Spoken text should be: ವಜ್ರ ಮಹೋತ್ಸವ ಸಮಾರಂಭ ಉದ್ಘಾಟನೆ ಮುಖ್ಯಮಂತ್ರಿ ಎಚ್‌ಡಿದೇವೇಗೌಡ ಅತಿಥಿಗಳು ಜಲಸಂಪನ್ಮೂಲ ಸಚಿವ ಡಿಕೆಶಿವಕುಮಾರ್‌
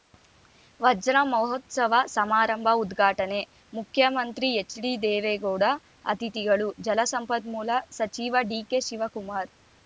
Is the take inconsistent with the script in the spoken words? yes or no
no